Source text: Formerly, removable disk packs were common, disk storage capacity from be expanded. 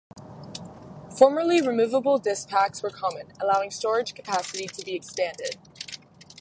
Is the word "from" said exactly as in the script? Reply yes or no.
no